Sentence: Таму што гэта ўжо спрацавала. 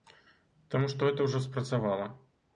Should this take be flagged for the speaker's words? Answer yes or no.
no